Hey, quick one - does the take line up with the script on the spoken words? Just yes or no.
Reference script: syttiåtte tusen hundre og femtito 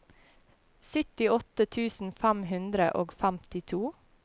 no